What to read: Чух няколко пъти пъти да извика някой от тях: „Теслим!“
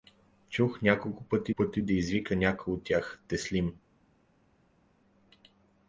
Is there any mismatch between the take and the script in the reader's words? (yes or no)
no